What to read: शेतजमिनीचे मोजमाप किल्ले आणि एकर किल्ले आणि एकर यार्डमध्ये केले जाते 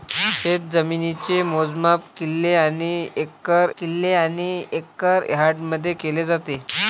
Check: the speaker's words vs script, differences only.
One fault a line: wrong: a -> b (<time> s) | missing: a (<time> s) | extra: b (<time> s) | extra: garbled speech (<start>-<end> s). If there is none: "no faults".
no faults